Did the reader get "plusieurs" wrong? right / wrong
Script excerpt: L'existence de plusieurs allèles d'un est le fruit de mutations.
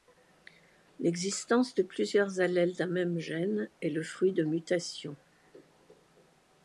right